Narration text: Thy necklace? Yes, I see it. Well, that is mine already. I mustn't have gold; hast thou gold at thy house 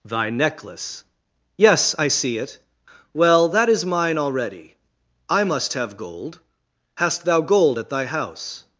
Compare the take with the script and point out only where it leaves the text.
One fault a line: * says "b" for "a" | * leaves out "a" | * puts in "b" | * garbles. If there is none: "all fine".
* says "must" for "mustn't"